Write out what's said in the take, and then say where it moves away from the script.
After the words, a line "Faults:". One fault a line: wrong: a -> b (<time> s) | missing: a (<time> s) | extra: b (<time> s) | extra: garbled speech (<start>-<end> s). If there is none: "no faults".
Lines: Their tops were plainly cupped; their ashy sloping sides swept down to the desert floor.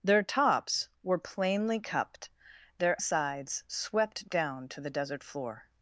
Their tops were plainly cupped; their sides swept down to the desert floor.
Faults:
missing: ashy sloping (3.0 s)